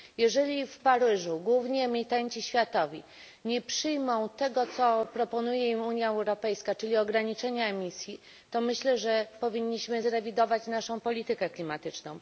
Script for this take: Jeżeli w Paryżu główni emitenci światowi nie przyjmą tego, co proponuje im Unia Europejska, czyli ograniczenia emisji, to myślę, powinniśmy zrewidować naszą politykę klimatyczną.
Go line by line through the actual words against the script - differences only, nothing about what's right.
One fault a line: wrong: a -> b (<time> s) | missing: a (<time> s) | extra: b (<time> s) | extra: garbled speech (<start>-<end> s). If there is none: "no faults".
extra: że (9.0 s)